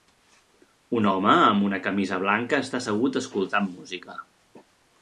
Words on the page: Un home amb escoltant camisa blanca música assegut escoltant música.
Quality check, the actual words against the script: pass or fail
fail